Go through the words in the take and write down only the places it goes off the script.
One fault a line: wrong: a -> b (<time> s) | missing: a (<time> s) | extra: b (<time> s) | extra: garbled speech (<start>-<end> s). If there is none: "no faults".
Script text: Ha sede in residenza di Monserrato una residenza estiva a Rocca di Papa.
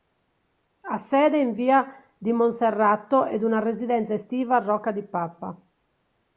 wrong: residenza -> via (1.5 s)
extra: ed (3.2 s)